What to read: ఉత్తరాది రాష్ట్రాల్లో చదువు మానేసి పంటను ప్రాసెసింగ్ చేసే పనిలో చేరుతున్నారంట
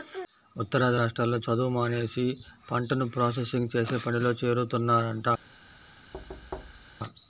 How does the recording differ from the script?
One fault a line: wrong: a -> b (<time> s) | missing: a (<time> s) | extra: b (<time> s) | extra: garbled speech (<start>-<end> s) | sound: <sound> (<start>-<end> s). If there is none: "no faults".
sound: thud (6.1-7.0 s)